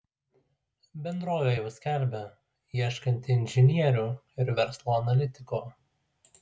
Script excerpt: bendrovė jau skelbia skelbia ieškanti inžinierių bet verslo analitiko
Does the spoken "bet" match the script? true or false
false